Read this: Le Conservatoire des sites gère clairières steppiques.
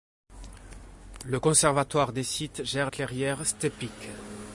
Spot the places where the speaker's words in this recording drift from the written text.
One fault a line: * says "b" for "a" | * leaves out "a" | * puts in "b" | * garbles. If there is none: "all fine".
all fine